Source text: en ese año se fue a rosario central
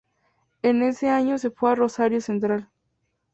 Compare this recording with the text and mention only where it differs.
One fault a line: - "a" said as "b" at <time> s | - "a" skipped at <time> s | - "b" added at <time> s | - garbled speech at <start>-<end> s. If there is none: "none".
none